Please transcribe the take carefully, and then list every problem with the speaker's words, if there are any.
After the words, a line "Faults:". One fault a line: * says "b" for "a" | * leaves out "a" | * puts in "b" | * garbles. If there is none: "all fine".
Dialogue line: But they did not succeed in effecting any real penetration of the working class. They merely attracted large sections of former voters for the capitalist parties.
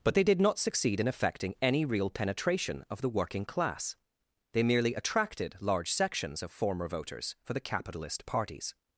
But they did not succeed in effecting any real penetration of the working class. They merely attracted large sections of former voters for the capitalist parties.
Faults:
all fine